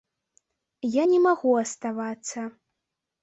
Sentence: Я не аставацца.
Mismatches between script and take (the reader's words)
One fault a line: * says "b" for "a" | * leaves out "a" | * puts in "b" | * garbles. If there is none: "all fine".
* puts in "магу"